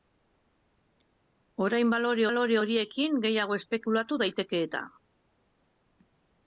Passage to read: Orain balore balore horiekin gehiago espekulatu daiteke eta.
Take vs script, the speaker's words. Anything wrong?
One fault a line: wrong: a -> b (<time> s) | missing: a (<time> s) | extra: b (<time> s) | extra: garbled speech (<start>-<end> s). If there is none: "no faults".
no faults